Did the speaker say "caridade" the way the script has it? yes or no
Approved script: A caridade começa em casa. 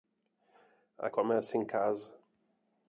no